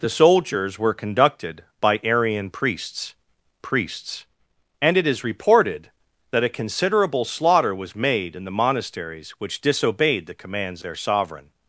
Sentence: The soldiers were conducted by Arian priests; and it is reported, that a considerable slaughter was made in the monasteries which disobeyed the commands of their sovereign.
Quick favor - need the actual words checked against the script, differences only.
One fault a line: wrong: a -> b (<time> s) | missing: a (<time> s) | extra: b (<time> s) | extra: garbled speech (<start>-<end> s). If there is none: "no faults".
extra: priests (3.6 s)
missing: of (10.8 s)